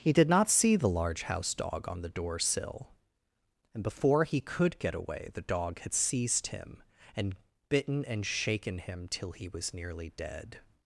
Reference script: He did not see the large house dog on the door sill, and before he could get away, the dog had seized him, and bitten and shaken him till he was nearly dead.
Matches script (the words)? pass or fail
pass